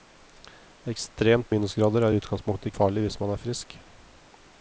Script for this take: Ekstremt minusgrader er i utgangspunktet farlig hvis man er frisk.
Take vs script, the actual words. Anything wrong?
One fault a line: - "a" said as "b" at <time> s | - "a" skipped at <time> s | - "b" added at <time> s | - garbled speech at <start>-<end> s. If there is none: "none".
none